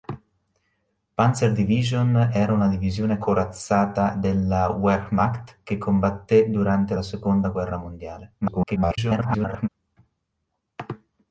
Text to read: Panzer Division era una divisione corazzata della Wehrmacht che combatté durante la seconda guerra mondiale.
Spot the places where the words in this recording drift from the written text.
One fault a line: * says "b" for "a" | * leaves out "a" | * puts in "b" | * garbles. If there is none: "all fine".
* garbles